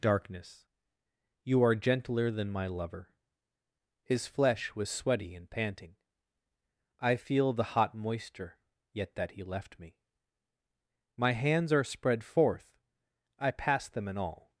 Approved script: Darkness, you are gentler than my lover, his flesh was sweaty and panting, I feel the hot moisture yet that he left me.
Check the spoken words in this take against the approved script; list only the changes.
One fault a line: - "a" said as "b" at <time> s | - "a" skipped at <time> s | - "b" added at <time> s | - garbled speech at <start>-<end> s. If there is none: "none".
- "My hands are spread forth I pass them in all" added at 11.2 s